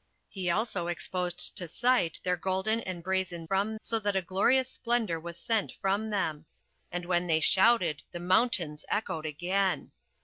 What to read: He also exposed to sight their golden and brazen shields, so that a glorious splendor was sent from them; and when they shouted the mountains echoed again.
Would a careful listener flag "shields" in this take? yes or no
yes